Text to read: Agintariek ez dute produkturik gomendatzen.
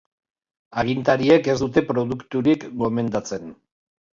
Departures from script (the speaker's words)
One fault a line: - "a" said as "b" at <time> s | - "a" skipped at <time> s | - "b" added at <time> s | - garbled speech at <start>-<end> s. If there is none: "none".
none